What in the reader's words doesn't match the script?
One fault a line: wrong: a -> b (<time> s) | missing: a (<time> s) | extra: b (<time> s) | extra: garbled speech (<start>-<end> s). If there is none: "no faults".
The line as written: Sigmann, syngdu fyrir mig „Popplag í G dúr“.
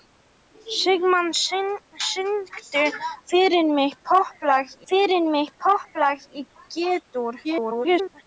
extra: fyrir mig Popplag (4.9 s)
extra: garbled speech (7.4-8.2 s)